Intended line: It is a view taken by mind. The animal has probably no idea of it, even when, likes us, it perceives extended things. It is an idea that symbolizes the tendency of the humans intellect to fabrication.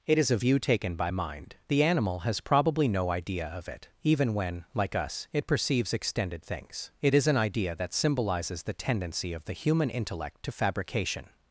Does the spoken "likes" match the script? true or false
false